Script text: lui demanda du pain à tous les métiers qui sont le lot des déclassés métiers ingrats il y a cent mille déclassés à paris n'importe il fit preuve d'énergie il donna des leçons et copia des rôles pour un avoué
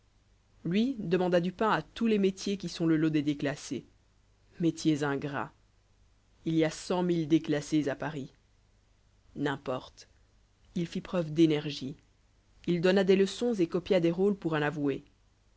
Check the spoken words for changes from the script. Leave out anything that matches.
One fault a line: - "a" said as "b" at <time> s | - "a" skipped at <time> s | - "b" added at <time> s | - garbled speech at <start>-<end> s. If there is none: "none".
none